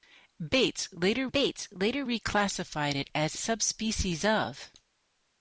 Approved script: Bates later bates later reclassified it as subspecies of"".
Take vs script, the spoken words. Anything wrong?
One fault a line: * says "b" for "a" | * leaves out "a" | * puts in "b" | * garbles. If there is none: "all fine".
all fine